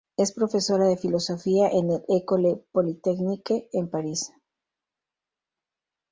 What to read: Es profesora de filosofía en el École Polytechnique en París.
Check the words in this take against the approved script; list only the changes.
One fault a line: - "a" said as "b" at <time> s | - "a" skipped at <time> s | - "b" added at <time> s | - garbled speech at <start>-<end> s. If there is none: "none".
none